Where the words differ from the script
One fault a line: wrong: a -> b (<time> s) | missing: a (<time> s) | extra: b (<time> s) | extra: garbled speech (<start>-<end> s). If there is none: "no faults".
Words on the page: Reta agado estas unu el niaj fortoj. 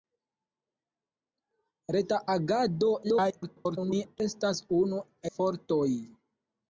extra: garbled speech (3.0-4.2 s)
missing: el niaj (5.0 s)